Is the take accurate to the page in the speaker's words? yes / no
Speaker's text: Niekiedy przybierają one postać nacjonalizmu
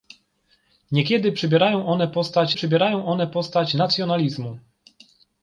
no